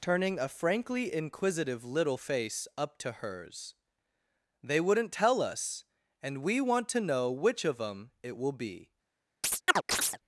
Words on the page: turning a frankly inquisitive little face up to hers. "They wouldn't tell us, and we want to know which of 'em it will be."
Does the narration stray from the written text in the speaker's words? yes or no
no